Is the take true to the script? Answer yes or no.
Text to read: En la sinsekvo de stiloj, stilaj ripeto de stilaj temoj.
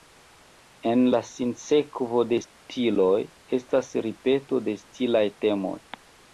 no